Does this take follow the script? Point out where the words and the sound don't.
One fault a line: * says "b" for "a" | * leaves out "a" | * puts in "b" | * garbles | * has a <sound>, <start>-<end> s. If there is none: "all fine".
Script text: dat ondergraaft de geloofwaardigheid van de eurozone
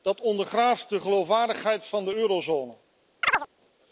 * has a chirp, 3.2-3.5 s